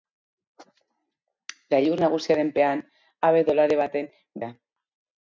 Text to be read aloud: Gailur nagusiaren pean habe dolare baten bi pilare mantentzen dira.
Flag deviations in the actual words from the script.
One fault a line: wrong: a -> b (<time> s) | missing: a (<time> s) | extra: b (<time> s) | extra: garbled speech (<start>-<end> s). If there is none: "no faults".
missing: bi pilare mantentzen (4.1 s)